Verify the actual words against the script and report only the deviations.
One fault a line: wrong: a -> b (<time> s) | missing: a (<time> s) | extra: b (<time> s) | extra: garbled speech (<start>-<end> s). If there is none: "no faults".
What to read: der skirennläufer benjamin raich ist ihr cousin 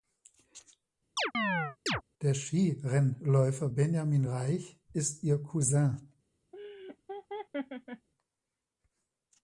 no faults